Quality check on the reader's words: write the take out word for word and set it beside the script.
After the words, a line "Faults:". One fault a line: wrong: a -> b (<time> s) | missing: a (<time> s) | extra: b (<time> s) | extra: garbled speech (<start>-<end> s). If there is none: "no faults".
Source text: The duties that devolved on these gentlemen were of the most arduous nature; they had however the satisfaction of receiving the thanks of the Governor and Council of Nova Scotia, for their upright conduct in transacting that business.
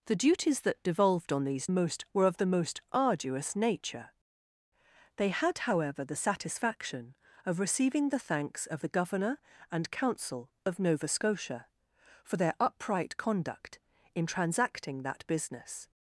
The duties that devolved on these most were of the most arduous nature; they had however the satisfaction of receiving the thanks of the Governor and Council of Nova Scotia, for their upright conduct in transacting that business.
Faults:
wrong: gentlemen -> most (1.7 s)